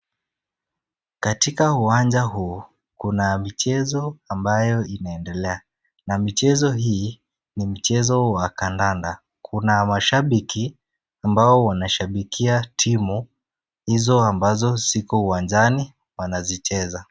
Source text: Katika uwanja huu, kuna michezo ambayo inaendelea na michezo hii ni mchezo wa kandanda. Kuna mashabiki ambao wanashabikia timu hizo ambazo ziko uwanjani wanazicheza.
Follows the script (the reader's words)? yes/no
yes